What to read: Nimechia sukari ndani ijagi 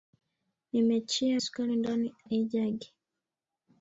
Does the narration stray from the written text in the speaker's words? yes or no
no